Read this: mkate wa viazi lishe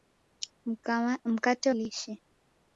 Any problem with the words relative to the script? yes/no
yes